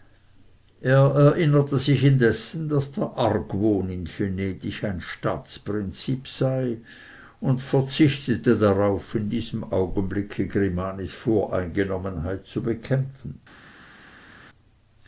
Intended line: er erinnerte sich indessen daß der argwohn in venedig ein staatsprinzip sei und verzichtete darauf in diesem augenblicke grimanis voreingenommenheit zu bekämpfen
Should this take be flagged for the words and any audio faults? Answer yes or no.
no